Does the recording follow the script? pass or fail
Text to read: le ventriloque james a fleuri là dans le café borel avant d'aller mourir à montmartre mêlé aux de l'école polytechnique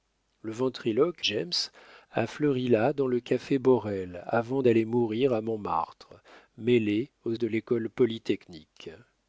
pass